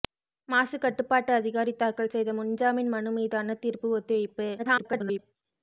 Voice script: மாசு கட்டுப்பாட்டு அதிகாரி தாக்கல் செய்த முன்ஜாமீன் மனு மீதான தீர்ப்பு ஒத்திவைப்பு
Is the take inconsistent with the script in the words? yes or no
yes